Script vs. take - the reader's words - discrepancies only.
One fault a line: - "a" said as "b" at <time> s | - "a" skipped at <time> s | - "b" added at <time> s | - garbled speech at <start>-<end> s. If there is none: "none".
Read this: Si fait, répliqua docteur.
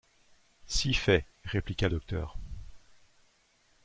none